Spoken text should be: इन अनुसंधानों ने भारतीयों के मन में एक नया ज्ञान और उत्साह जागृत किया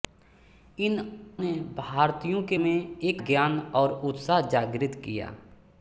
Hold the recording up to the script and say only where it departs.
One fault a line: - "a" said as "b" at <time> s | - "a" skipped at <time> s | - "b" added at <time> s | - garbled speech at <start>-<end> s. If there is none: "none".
- "अनुसंधानों" skipped at 1.0 s
- "मन" skipped at 2.6 s
- "नया" skipped at 3.2 s